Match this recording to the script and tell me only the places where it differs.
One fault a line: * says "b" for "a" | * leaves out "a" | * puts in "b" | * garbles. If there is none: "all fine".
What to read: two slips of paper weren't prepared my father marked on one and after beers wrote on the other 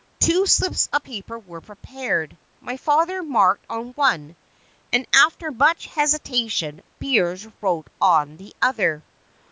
* says "were" for "weren't"
* puts in "much hesitation"